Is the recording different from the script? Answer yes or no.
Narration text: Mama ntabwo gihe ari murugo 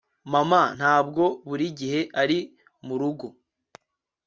yes